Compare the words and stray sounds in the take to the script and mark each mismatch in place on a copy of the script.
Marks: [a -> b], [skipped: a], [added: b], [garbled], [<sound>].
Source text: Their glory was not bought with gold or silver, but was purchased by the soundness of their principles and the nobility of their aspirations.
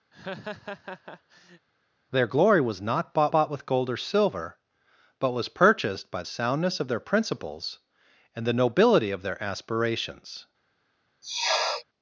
[laugh] Their glory was not bought [added: bought] with gold or silver, but was purchased by [skipped: the] soundness of their principles and the nobility of their aspirations. [sniff]